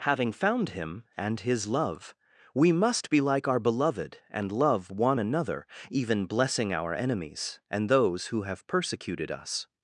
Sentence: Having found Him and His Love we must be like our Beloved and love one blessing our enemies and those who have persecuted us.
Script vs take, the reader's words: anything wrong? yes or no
yes